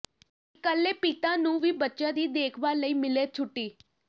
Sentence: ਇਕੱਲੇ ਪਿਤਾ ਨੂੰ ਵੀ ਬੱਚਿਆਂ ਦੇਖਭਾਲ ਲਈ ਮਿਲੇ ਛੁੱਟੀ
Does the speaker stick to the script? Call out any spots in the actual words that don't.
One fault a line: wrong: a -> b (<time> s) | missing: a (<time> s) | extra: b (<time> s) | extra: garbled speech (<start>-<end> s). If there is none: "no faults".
extra: ਦੀ (2.1 s)